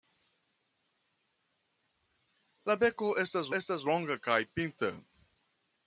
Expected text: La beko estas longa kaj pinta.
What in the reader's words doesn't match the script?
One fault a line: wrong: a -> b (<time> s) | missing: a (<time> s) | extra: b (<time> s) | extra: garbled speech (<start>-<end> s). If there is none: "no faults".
extra: estas (3.6 s)